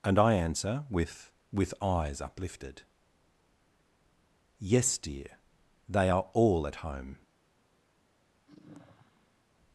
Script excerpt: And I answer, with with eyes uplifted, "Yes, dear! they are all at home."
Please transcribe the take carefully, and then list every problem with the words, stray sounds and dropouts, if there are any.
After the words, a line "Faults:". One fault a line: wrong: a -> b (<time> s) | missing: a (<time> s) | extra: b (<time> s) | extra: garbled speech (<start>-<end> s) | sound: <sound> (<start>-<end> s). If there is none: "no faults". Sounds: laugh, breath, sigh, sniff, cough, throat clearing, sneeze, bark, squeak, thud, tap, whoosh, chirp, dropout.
And I answer, with with eyes uplifted, "Yes, dear! they are all at home."
Faults:
sound: sigh (8.5-9.4 s)